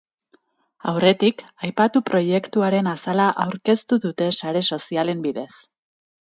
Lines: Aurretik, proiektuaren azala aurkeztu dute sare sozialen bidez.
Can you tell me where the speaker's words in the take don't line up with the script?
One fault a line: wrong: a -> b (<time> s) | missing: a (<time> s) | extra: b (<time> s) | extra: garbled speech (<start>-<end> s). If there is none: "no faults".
extra: aipatu (1.7 s)